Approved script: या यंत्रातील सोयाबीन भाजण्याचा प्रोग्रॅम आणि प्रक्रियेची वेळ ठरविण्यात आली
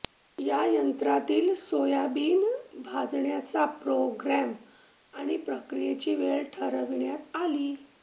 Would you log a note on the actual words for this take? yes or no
no